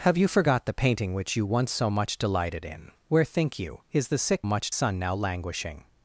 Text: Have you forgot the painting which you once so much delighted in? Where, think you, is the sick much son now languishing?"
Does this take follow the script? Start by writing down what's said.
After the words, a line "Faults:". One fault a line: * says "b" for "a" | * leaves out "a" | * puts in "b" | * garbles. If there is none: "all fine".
Have you forgot the painting which you once so much delighted in? Where, think you, is the sick much son now languishing?"
Faults:
all fine